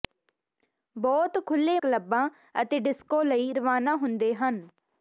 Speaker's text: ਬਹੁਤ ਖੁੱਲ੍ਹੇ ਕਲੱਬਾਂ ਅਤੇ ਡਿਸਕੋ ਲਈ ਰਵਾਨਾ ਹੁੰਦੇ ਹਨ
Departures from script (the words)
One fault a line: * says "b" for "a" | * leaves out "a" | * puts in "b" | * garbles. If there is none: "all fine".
all fine